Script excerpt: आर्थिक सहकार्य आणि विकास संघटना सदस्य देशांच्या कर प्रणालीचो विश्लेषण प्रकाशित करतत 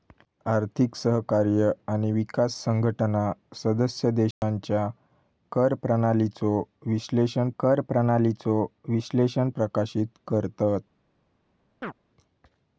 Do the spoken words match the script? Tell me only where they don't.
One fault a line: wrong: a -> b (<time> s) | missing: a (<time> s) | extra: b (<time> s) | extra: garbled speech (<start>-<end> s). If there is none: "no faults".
extra: कर प्रणालीचो विश्लेषण (7.6 s)